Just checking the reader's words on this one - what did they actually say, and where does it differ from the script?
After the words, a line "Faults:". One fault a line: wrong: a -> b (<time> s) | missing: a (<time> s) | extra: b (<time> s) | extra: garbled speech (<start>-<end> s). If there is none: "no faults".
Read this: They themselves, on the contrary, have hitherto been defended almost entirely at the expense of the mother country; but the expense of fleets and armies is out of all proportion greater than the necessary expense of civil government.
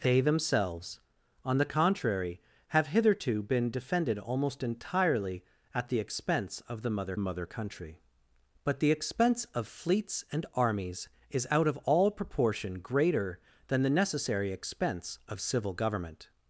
They themselves, on the contrary, have hitherto been defended almost entirely at the expense of the mother mother country; but the expense of fleets and armies is out of all proportion greater than the necessary expense of civil government.
Faults:
extra: mother (7.2 s)